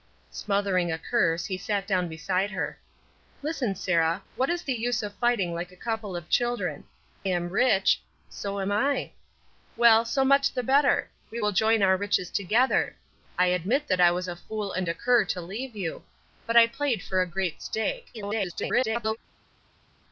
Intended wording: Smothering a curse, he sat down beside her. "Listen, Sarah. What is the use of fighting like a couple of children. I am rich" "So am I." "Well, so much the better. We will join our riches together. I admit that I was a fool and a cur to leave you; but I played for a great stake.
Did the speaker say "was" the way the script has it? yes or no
yes